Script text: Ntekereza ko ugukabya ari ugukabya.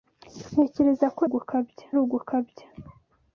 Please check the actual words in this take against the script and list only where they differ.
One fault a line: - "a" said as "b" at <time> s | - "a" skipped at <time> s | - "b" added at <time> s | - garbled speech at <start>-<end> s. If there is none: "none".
none